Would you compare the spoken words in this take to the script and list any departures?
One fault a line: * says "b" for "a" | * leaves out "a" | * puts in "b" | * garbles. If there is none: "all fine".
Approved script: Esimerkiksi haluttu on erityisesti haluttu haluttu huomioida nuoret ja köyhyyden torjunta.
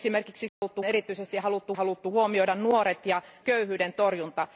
all fine